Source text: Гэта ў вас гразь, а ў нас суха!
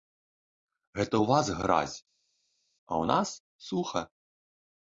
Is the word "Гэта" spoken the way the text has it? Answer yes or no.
yes